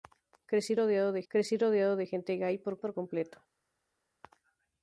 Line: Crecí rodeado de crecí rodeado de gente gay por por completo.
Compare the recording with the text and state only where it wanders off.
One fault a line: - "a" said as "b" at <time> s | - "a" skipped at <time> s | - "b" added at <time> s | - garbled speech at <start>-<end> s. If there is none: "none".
none